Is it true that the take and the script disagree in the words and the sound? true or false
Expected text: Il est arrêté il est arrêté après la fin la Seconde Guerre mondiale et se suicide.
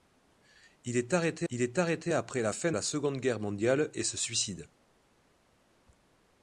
false